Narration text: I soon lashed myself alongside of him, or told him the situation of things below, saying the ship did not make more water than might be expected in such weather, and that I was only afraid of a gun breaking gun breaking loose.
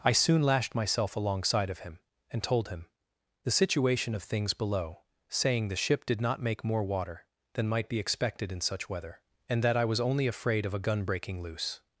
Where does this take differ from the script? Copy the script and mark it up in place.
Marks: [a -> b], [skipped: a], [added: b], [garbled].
I soon lashed myself alongside of him, [or -> and] told him the situation of things below, saying the ship did not make more water than might be expected in such weather, and that I was only afraid of a gun breaking [skipped: gun breaking] loose.